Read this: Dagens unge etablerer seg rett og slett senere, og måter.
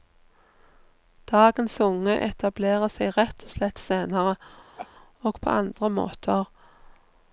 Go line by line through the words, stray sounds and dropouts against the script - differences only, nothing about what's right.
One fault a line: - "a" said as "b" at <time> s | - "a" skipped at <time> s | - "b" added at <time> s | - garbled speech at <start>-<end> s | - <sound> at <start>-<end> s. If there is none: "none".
- laugh at 4.8-4.9 s
- "på andre" added at 5.4 s